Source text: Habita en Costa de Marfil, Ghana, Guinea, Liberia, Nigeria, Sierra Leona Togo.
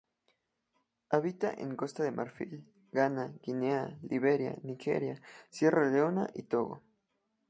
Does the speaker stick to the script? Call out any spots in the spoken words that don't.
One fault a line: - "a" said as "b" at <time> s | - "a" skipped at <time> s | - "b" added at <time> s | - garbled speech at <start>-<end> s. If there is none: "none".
- "y" added at 6.3 s